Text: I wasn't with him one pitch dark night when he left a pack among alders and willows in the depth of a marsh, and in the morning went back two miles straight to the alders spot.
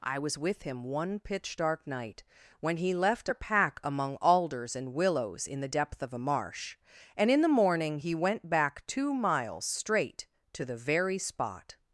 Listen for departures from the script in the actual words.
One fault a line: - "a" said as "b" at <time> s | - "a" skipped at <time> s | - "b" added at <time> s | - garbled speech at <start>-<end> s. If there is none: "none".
- "wasn't" said as "was" at 0.2 s
- "he" added at 8.0 s
- "alders" said as "very" at 10.8 s